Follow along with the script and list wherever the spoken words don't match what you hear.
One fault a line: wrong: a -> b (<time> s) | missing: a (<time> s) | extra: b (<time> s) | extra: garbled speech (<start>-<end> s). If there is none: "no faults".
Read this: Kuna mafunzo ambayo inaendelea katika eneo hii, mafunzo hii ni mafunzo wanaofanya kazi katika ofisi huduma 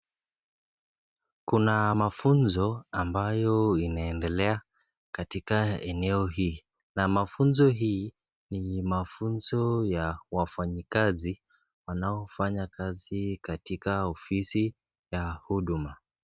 extra: na (6.9 s)
extra: ya wafanyikazi (9.8 s)
extra: ya (15.1 s)